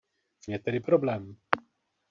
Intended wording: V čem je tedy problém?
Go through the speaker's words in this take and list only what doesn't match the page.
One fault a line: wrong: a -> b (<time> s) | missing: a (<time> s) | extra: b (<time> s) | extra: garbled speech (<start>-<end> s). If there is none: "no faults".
missing: čem (0.5 s)